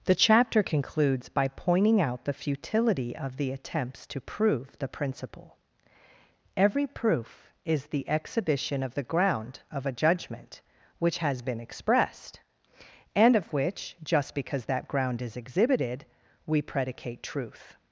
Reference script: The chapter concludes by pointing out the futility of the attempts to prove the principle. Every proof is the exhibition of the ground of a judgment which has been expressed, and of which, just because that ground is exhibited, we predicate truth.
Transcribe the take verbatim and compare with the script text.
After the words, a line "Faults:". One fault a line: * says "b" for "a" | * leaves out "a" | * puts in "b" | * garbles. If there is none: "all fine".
The chapter concludes by pointing out the futility of the attempts to prove the principle. Every proof is the exhibition of the ground of a judgment which has been expressed, and of which, just because that ground is exhibited, we predicate truth.
Faults:
all fine